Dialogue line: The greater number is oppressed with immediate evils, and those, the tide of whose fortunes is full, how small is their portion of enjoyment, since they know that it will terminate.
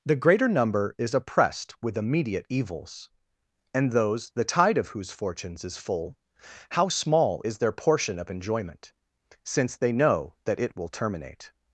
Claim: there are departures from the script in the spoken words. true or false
false